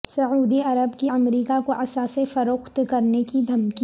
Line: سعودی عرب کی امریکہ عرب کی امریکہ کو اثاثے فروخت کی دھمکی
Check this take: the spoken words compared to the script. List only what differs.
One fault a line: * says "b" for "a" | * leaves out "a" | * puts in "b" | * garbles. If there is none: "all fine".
* leaves out "عرب کی امریکہ"
* puts in "کرنے"